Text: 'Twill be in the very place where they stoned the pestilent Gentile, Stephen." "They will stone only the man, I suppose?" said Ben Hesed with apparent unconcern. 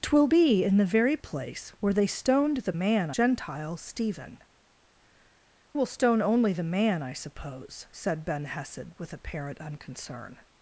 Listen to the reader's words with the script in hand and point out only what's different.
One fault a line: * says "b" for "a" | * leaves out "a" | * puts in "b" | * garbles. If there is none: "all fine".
* says "man" for "pestilent"
* leaves out "They"